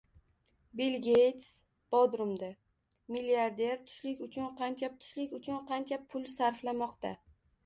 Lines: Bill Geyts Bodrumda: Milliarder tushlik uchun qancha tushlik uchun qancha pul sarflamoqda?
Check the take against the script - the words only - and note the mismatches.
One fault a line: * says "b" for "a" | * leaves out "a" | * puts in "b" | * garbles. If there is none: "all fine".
all fine